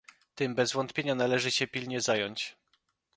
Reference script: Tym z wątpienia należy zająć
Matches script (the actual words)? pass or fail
fail